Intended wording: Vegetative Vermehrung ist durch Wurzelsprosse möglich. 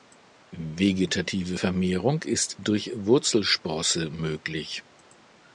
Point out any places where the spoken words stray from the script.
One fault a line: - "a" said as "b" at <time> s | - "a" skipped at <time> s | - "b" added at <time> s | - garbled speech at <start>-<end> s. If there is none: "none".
none